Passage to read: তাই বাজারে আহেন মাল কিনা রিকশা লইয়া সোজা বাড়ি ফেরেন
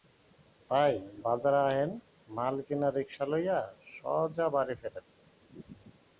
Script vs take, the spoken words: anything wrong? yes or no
no